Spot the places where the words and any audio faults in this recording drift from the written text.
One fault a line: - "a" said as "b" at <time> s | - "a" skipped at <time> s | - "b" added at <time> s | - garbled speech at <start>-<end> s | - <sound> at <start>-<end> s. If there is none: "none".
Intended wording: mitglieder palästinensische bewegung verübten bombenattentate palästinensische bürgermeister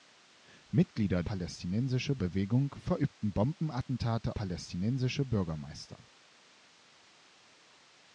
none